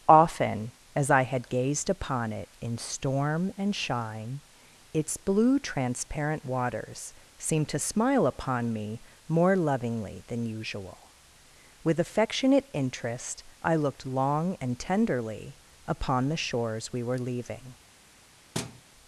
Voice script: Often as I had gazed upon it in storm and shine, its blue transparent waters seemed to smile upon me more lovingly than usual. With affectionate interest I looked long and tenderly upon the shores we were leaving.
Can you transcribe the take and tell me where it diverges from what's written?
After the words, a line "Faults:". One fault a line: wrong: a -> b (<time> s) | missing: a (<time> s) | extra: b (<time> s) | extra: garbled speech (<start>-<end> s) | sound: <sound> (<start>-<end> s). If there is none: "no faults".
Often as I had gazed upon it in storm and shine, its blue transparent waters seemed to smile upon me more lovingly than usual. With affectionate interest I looked long and tenderly upon the shores we were leaving.
Faults:
sound: thud (18.5-18.8 s)